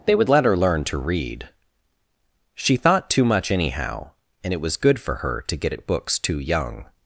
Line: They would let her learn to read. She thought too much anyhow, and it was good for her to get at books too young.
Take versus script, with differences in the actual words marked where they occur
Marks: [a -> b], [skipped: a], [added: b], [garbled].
They would let her learn to read. She thought too much anyhow, and it was good for her to get at books too young.